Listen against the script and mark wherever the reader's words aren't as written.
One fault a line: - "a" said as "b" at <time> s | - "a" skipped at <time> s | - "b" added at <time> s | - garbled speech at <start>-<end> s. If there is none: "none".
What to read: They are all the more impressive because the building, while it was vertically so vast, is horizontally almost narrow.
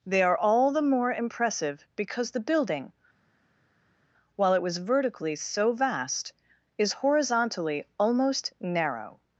none